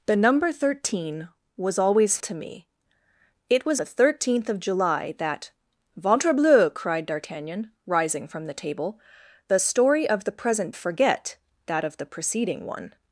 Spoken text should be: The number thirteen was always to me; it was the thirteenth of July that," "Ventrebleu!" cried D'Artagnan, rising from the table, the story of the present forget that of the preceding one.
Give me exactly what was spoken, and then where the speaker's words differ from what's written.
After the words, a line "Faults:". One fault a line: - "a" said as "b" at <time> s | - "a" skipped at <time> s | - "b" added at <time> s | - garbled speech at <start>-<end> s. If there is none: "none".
The number thirteen was always to me; it was the thirteenth of July that," "Ventrebleu!" cried D'Artagnan, rising from the table, the story of the present forget that of the preceding one.
Faults:
none